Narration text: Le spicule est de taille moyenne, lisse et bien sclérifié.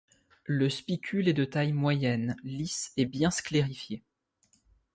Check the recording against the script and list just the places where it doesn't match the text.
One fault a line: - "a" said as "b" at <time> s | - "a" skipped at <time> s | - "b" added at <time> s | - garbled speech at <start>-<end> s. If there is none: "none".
none